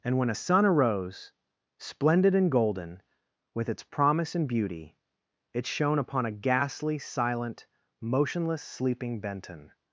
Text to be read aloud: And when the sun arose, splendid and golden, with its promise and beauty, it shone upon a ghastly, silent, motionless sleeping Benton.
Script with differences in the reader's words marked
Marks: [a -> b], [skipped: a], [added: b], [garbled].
And when [the -> a] sun arose, splendid and golden, with its promise and beauty, it shone upon a ghastly, silent, motionless sleeping Benton.